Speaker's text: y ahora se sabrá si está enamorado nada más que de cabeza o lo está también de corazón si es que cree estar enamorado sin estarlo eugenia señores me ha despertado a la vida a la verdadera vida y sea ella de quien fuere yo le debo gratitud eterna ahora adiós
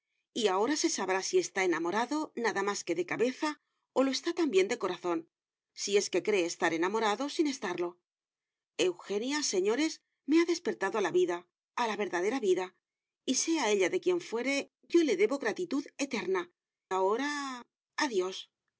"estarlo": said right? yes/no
yes